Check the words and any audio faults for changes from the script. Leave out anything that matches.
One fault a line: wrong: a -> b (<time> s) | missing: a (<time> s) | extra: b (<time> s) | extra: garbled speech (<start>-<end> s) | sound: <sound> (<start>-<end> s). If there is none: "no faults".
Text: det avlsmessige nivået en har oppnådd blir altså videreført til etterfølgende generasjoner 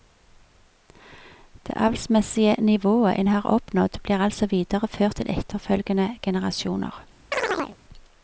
sound: chirp (7.3-7.8 s)